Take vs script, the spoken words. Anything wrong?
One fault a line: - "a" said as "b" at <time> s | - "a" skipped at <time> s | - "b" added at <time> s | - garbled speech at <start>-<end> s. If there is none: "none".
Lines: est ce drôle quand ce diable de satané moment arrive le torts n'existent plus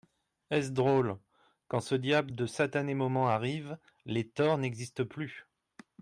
- "le" said as "les" at 4.1 s